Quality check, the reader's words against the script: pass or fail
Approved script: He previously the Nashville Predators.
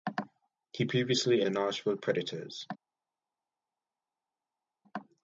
pass